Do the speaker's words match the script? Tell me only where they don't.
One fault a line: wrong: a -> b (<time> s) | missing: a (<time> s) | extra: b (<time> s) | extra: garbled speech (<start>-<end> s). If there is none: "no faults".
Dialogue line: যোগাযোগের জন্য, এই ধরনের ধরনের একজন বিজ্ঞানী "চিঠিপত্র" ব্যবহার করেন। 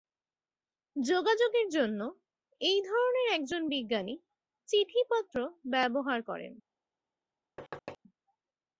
missing: ধরনের (3.3 s)